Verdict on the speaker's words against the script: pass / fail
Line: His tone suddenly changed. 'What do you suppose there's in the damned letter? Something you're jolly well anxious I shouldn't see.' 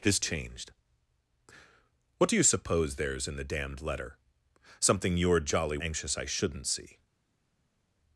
fail